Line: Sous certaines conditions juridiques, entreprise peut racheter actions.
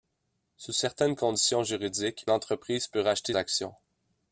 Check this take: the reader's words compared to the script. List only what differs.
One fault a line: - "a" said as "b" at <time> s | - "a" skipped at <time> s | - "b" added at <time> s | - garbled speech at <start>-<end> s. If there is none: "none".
none